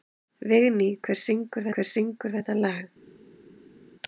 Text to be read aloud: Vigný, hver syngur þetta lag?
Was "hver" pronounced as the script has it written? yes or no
yes